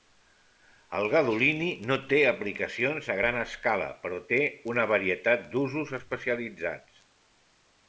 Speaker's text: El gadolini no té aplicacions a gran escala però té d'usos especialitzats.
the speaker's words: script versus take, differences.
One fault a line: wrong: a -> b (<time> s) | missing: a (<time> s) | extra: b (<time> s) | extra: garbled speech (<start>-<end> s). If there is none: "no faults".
extra: una varietat (4.7 s)